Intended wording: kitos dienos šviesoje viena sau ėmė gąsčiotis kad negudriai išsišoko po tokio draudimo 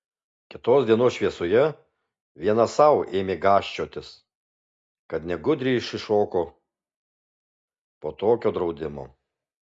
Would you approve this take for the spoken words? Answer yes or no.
yes